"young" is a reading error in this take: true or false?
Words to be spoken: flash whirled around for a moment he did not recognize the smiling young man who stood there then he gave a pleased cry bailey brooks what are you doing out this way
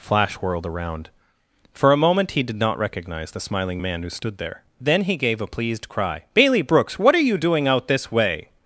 true